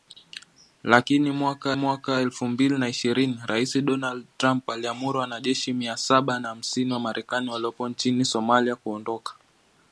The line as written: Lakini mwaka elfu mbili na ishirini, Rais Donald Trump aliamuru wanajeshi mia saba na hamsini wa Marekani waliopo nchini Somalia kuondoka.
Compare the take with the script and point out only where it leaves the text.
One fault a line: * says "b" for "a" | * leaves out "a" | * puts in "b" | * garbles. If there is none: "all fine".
* puts in "mwaka"